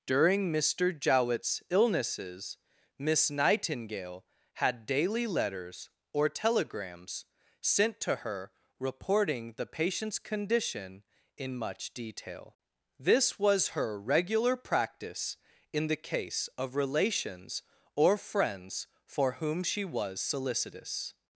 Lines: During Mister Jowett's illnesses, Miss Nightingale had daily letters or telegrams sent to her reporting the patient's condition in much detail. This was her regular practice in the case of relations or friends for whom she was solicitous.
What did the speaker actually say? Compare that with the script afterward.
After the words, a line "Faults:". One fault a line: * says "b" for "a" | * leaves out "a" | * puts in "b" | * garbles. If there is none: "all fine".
During Mister Jowett's illnesses, Miss Nightingale had daily letters or telegrams sent to her reporting the patient's condition in much detail. This was her regular practice in the case of relations or friends for whom she was solicitous.
Faults:
all fine